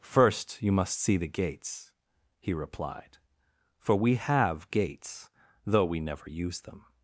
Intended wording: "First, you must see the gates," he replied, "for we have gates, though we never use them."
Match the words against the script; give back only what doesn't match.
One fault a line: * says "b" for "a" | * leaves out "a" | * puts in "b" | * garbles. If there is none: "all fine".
all fine